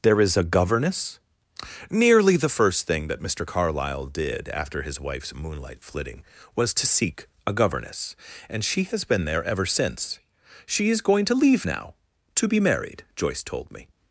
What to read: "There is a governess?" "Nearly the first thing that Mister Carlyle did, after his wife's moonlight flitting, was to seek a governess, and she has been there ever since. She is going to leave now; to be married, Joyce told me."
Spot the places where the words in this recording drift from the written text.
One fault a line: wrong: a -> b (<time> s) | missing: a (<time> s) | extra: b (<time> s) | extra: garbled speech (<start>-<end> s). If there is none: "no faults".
no faults